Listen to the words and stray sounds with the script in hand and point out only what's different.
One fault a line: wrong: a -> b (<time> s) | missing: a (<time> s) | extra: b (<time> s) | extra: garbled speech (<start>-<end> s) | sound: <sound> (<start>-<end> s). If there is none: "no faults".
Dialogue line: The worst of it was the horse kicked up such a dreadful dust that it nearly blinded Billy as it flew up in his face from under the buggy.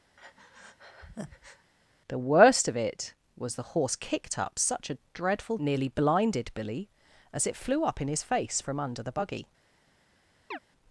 sound: breath (0.2-1.7 s)
missing: dust that it (5.6 s)
sound: chirp (10.5-10.6 s)